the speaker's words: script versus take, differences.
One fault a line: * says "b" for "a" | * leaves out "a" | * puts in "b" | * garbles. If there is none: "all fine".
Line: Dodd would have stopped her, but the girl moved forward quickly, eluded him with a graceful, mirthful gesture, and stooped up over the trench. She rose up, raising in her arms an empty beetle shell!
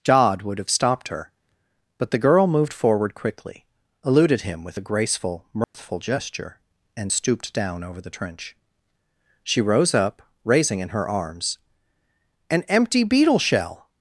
* says "down" for "up"